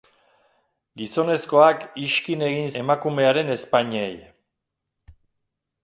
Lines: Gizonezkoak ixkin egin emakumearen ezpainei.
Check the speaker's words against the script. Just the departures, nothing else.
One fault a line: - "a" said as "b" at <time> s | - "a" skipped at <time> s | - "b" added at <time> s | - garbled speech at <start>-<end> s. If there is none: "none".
none